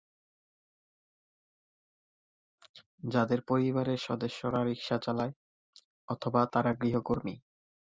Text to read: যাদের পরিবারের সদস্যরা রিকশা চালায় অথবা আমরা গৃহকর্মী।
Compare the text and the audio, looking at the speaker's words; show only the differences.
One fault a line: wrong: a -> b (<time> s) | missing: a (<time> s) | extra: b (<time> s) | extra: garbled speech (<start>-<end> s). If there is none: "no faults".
wrong: আমরা -> তারা (6.5 s)